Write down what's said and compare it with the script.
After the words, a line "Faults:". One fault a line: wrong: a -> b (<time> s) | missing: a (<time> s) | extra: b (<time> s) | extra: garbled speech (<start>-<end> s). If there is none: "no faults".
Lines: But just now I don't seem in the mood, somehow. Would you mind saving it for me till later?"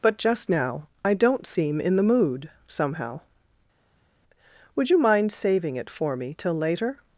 But just now I don't seem in the mood, somehow. Would you mind saving it for me till later?"
Faults:
no faults